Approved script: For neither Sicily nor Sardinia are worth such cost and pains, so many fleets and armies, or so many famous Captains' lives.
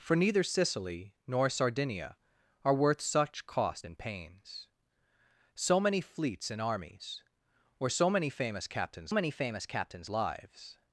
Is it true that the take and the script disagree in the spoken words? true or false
true